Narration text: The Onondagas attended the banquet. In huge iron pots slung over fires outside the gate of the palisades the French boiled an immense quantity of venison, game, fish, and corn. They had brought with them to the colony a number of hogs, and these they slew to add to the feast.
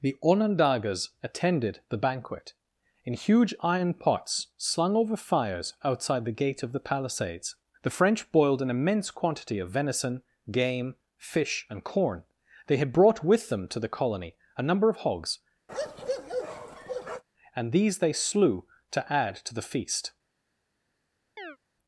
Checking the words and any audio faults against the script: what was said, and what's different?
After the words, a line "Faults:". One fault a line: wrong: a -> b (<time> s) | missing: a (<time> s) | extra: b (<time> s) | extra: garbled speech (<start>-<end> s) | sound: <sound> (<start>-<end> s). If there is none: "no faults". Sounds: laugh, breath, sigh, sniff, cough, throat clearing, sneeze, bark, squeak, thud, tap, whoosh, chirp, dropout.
The Onondagas attended the banquet. In huge iron pots slung over fires outside the gate of the palisades the French boiled an immense quantity of venison, game, fish, and corn. They had brought with them to the colony a number of hogs, and these they slew to add to the feast.
Faults:
sound: bark (15.7-17.2 s)
sound: chirp (21.4-21.6 s)